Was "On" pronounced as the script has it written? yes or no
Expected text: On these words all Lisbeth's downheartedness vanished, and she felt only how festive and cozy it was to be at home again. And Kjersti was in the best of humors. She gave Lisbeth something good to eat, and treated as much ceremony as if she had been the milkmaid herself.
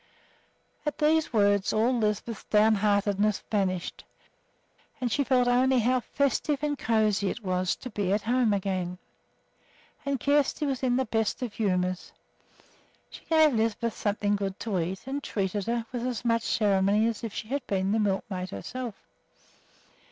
no